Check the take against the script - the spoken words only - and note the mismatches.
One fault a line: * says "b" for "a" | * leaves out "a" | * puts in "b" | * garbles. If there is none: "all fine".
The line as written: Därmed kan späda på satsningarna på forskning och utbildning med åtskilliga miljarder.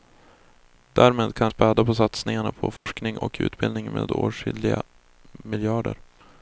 all fine